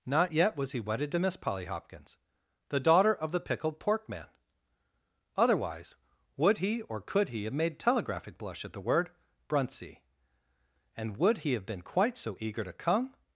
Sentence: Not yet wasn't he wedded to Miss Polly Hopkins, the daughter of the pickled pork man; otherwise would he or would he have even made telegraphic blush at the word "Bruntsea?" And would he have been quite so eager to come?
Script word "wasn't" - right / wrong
wrong